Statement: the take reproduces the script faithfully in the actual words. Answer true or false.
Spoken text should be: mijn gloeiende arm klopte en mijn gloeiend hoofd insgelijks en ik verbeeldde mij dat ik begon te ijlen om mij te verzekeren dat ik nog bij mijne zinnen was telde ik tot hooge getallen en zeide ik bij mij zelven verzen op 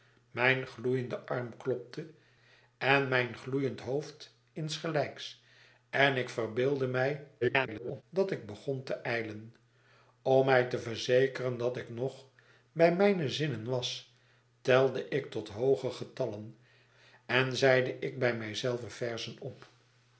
false